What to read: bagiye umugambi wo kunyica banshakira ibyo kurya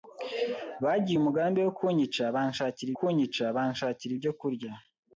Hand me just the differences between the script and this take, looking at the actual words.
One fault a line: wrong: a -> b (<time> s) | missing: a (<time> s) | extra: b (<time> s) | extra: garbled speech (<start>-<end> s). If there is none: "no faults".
extra: kunyica banshakira (3.0 s)